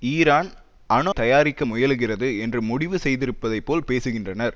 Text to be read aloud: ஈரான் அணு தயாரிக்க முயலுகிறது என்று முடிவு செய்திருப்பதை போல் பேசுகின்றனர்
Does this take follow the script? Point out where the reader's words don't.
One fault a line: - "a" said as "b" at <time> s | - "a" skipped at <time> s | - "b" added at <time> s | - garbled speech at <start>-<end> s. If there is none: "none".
none